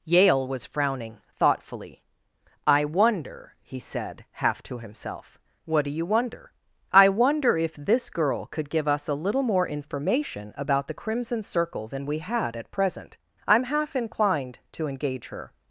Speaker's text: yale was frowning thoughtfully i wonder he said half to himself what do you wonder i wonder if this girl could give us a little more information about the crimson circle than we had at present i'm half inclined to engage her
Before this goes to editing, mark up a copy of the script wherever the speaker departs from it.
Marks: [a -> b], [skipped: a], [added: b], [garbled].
yale was frowning thoughtfully i wonder he said half to himself what do you wonder i wonder if this girl could give us a little more information about the crimson circle than we had at present i'm half inclined to engage her